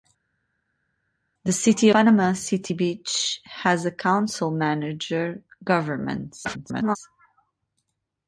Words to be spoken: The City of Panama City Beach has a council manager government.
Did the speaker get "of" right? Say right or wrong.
wrong